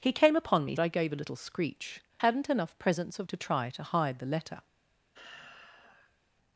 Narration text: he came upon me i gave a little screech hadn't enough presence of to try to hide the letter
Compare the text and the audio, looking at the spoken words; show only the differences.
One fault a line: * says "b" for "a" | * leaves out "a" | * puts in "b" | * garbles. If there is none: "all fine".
all fine